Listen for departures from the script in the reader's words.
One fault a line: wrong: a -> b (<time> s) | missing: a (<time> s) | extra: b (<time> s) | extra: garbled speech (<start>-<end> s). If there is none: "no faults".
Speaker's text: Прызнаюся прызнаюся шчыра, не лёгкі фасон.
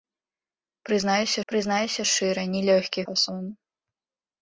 no faults